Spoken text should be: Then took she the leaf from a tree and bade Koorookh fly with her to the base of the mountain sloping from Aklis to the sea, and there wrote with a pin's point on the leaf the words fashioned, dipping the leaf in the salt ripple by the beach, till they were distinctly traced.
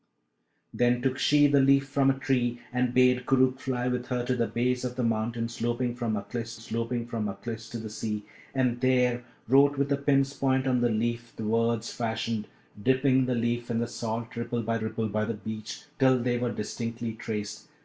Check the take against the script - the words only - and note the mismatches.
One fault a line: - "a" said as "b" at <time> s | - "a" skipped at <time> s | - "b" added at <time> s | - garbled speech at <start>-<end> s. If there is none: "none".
- "sloping from Aklis" added at 6.6 s
- "ripple by" added at 14.8 s